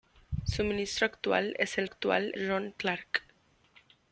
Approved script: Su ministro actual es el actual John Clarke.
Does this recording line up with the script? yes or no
yes